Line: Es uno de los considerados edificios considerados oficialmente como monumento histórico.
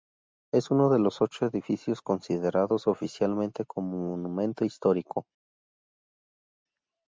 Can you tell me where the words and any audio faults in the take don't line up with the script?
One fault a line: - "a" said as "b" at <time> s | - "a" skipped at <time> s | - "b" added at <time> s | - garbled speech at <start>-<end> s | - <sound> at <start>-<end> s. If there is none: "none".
- "considerados" said as "ocho" at 1.2 s